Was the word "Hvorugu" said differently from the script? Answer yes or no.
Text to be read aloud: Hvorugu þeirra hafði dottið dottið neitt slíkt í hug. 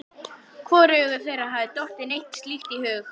no